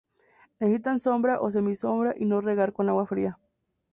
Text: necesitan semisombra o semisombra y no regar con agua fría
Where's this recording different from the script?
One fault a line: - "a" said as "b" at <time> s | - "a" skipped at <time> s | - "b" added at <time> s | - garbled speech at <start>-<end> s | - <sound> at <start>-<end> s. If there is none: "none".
- "semisombra" said as "sombra" at 1.0 s